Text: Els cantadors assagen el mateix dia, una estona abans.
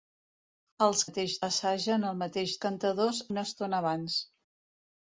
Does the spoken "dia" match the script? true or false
false